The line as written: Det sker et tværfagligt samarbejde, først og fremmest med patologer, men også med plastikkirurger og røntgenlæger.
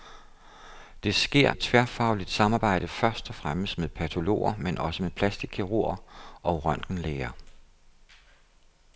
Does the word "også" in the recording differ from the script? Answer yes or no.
no